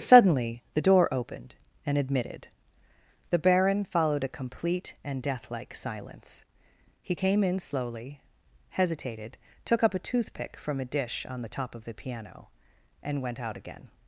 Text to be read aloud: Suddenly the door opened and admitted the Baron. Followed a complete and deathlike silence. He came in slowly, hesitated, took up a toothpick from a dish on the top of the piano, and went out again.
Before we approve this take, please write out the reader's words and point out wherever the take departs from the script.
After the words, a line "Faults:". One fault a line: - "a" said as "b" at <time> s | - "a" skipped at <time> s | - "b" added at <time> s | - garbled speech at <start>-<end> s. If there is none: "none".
Suddenly the door opened and admitted the Baron. Followed a complete and deathlike silence. He came in slowly, hesitated, took up a toothpick from a dish on the top of the piano, and went out again.
Faults:
none